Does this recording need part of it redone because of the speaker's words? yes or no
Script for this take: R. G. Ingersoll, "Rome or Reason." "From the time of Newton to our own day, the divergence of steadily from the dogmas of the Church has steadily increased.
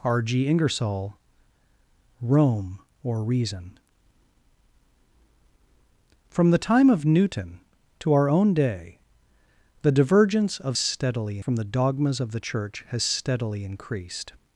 no